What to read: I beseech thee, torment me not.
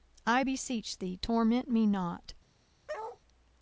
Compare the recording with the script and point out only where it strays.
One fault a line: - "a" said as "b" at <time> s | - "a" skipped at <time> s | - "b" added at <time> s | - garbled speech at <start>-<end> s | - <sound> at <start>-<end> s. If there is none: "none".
- bark at 2.9-3.2 s